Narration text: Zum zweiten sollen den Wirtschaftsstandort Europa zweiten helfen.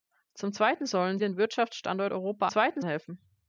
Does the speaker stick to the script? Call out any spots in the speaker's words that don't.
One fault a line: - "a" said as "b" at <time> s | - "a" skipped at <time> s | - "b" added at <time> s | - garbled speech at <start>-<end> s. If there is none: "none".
none